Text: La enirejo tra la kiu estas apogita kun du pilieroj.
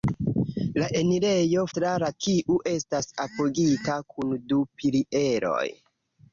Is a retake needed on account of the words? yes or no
no